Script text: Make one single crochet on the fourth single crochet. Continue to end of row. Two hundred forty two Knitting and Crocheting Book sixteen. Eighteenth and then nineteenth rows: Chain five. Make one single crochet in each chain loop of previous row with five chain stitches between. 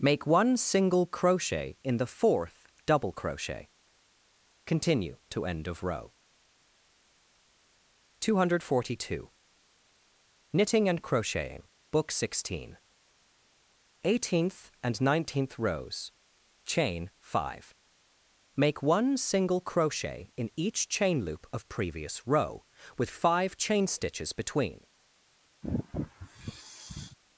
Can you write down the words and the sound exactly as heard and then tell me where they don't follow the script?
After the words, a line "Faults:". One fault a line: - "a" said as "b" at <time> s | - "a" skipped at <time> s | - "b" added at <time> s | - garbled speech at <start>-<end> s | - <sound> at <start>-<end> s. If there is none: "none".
Make one single crochet in the fourth double crochet. Continue to end of row. Two hundred forty two Knitting and Crocheting Book sixteen. Eighteenth and nineteenth rows: Chain five. Make one single crochet in each chain loop of previous row with five chain stitches between.
Faults:
- "on" said as "in" at 1.8 s
- "single" said as "double" at 2.9 s
- "then" skipped at 15.0 s
- sigh at 25.6-27.2 s